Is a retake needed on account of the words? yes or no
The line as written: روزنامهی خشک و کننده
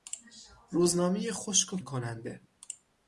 no